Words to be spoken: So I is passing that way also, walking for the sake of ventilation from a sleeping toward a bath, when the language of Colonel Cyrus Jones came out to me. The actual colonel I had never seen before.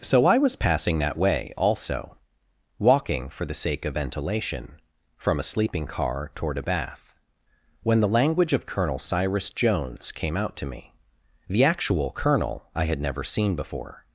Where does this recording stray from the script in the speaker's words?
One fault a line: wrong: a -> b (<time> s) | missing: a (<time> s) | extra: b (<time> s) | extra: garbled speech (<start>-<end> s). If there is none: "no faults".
wrong: is -> was (0.4 s)
extra: car (5.9 s)